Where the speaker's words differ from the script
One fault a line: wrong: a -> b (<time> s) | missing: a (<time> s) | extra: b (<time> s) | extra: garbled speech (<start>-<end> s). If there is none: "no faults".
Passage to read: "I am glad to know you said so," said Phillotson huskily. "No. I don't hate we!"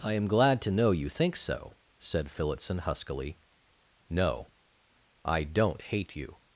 wrong: said -> think (1.1 s)
wrong: we -> you (6.2 s)